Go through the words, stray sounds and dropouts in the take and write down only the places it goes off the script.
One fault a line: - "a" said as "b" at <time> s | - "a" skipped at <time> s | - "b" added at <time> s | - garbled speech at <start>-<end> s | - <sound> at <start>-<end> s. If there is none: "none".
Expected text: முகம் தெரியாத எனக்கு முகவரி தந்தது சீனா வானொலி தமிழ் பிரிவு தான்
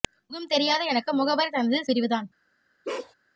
- "சீனா வானொலி தமிழ்" skipped at 1.8 s
- bark at 2.8-3.1 s